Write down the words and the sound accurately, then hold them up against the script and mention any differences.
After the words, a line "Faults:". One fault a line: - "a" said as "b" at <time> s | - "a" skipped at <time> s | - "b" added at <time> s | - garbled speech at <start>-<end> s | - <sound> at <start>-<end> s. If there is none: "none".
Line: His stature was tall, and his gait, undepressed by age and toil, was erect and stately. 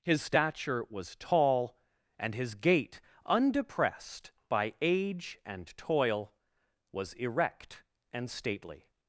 His stature was tall, and his gait, undepressed by age and toil, was erect and stately.
Faults:
none